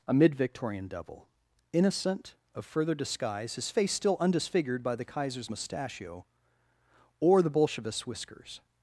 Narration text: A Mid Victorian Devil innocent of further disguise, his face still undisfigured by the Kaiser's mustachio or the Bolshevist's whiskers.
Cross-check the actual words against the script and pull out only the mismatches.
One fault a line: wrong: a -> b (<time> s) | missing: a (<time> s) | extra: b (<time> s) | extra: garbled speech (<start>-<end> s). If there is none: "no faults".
no faults